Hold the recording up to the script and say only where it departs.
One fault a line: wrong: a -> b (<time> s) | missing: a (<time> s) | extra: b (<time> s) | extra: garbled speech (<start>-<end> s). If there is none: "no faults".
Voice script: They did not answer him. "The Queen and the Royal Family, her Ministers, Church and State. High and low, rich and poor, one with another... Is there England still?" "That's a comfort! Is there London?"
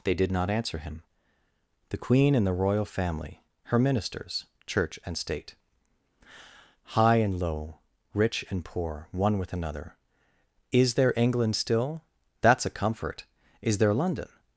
no faults